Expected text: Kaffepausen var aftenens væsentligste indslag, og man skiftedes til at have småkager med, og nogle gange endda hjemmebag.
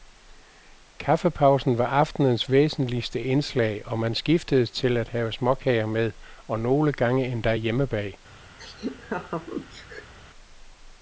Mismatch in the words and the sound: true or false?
true